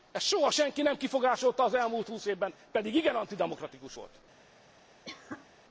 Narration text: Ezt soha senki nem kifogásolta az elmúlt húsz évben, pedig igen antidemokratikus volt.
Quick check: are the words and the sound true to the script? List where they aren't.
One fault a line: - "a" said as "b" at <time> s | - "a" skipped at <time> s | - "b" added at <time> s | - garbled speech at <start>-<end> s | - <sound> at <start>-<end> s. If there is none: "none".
- cough at 5.0-5.5 s